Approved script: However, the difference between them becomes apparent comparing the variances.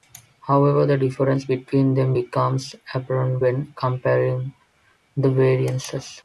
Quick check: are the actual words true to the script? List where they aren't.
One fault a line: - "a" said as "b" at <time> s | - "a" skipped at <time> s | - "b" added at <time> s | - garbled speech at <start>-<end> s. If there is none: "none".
- "when" added at 3.4 s